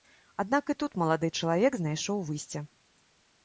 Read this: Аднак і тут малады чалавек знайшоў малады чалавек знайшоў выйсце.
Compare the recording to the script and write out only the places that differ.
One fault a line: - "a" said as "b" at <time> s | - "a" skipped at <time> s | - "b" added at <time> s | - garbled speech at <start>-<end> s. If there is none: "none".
- "малады чалавек знайшоў" skipped at 2.3 s